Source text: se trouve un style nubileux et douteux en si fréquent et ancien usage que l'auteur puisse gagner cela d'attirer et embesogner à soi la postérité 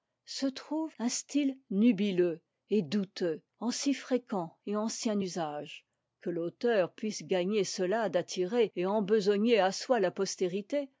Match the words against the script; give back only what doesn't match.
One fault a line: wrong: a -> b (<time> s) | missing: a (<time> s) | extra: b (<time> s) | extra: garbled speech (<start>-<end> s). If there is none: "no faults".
no faults